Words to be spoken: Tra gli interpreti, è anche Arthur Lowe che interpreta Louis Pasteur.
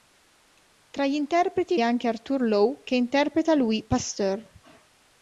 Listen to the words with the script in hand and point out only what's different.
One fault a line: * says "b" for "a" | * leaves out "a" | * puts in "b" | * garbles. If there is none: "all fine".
all fine